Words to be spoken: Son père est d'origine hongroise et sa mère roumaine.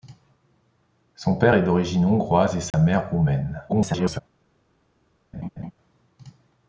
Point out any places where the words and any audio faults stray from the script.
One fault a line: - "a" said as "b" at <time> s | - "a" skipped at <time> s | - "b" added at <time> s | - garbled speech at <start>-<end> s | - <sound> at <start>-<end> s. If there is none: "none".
- dropout at 2.7-2.7 s
- garbled speech at 3.7-4.2 s
- laugh at 5.3-5.7 s